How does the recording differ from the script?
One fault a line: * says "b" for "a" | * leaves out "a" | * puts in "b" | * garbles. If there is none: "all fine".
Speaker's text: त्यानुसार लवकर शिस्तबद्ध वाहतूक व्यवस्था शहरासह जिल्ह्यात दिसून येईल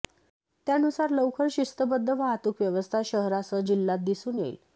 all fine